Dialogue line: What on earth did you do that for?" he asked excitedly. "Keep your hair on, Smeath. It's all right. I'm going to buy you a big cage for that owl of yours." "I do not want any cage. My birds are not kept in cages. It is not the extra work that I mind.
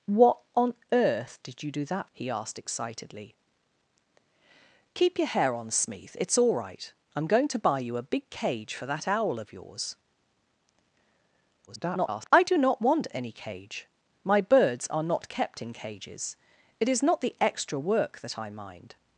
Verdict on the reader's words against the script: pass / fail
fail